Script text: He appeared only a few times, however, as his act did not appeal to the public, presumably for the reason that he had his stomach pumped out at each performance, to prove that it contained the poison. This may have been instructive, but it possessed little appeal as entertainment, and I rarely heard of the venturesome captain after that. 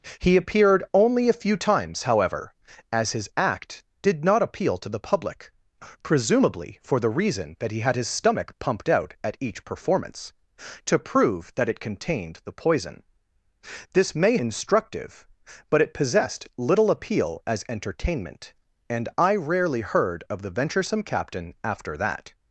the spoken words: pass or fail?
fail